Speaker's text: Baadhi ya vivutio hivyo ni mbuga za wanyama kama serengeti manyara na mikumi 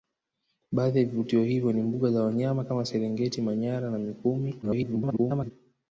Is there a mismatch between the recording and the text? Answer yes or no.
yes